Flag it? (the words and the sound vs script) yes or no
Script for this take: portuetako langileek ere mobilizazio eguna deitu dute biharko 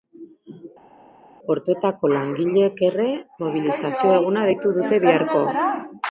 no